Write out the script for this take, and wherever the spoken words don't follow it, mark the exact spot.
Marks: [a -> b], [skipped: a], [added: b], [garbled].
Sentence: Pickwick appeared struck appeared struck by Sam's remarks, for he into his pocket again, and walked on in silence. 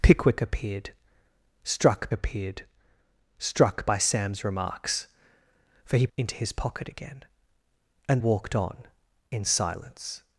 Pickwick appeared struck appeared struck by Sam's remarks, for he into his pocket again, and walked on in silence.